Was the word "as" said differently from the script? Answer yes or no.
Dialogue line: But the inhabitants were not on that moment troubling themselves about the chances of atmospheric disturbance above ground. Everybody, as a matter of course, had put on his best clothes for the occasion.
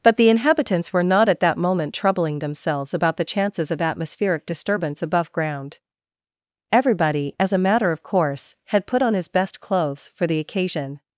no